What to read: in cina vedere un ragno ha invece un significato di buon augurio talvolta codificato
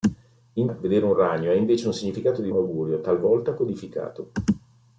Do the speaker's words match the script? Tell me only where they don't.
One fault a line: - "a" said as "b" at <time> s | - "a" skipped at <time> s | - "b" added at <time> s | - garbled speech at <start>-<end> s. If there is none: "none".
- "cina" skipped at 0.7 s
- "buon" skipped at 2.5 s